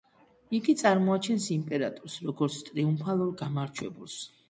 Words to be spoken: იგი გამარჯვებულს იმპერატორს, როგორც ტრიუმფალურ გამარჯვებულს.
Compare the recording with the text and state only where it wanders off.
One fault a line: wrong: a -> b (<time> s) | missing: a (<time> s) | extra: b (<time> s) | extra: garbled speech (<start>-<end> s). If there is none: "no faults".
wrong: გამარჯვებულს -> წარმოაჩენს (0.8 s)